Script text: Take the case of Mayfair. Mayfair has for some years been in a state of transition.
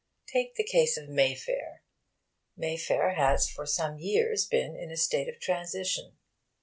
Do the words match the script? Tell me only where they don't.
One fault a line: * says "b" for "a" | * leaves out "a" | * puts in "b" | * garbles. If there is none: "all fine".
all fine